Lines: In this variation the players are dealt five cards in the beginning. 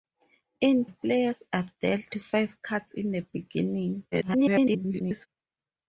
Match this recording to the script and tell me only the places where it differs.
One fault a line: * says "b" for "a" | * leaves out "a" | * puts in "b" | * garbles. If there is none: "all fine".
* leaves out "this variation the"
* garbles